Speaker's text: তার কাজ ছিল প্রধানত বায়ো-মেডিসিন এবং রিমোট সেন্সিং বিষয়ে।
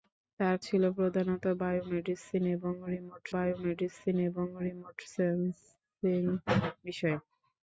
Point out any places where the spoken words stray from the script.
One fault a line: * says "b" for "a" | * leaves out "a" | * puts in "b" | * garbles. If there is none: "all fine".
* leaves out "কাজ"
* puts in "বায়ো-মেডিসিন এবং রিমোট"